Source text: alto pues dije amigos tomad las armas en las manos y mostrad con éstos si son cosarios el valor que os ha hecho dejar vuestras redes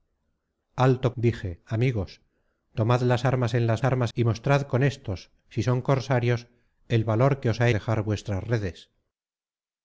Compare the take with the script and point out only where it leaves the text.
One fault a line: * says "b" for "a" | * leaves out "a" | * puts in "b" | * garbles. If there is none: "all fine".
* leaves out "pues"
* says "armas" for "manos"
* leaves out "hecho"